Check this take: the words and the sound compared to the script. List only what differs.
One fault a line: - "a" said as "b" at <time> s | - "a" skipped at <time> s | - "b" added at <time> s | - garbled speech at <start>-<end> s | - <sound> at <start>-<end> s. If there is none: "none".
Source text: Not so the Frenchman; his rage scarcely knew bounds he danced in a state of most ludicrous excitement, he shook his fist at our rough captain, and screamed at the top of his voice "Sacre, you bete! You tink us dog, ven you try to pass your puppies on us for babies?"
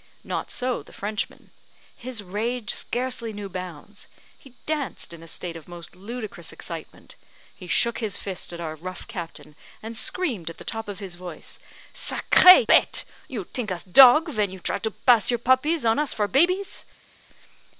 - "you" skipped at 12.6 s